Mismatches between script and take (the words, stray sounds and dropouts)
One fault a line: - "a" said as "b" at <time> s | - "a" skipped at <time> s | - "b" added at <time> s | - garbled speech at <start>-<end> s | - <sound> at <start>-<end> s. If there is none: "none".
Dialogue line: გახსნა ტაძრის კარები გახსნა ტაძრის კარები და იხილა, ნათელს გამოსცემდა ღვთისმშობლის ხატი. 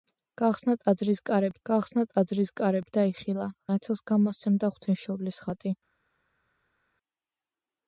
none